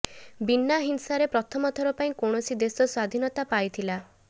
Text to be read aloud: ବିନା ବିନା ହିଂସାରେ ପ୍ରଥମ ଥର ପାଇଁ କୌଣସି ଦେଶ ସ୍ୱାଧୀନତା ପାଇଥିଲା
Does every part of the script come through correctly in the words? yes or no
no